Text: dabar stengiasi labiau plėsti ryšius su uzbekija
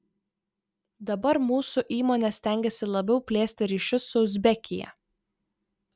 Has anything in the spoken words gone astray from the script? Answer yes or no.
yes